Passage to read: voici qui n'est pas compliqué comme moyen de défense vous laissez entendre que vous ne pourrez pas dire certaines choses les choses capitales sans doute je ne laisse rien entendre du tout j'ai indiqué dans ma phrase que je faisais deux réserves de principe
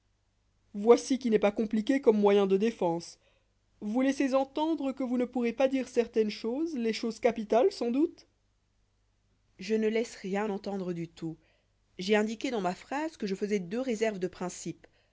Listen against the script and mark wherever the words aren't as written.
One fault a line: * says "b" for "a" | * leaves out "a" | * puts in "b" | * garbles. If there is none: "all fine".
all fine